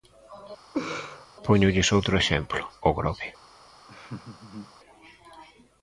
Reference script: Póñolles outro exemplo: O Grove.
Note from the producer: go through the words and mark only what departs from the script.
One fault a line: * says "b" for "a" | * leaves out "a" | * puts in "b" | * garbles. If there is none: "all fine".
all fine